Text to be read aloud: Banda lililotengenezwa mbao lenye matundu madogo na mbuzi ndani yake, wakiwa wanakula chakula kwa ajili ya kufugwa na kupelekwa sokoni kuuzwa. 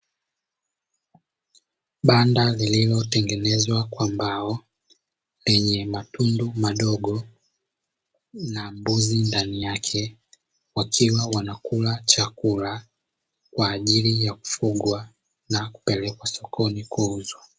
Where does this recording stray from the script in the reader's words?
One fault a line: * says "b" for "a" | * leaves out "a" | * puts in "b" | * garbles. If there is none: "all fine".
* puts in "kwa"